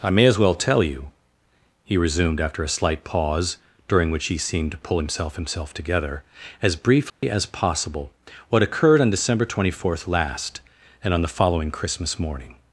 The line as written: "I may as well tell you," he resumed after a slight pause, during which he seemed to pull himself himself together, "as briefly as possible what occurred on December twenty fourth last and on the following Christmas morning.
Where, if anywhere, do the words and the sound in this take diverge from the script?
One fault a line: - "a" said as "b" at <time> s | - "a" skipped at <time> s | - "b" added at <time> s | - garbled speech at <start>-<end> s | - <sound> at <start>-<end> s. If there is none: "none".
- dropout at 7.1-7.2 s